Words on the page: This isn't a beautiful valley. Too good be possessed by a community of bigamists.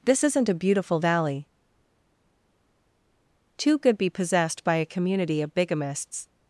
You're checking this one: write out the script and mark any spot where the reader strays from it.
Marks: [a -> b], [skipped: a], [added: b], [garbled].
This isn't a beautiful valley. Too good be possessed by a community of bigamists.